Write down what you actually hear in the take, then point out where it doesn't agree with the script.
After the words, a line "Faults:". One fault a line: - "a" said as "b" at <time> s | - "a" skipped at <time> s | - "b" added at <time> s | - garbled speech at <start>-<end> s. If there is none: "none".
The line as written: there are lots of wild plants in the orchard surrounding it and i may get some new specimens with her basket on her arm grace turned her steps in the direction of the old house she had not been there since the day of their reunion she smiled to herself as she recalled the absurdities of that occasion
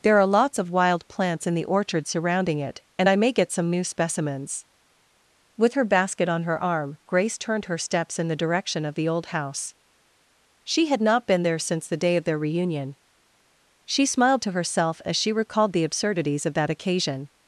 there are lots of wild plants in the orchard surrounding it and i may get some new specimens with her basket on her arm grace turned her steps in the direction of the old house she had not been there since the day of their reunion she smiled to herself as she recalled the absurdities of that occasion
Faults:
none